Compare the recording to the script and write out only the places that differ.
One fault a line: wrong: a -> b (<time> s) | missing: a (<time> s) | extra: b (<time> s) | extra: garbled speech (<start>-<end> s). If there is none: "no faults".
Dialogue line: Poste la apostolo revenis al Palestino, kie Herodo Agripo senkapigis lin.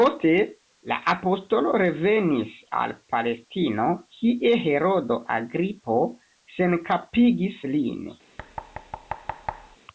no faults